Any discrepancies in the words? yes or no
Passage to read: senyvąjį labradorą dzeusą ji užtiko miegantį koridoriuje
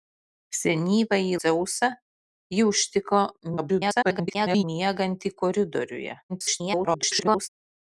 yes